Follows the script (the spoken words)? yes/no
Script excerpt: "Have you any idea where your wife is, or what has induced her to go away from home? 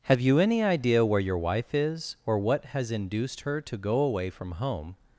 yes